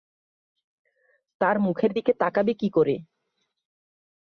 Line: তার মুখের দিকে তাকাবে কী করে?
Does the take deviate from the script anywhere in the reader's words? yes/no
no